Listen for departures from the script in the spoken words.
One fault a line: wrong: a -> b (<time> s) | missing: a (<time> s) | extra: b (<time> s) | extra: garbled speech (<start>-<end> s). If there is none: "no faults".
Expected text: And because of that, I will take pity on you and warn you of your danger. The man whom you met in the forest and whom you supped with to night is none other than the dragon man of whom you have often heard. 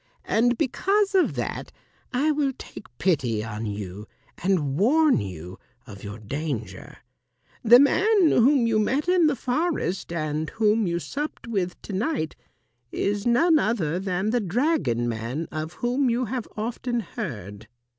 no faults